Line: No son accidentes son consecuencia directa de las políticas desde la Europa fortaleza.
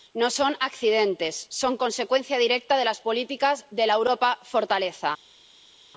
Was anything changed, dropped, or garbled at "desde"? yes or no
yes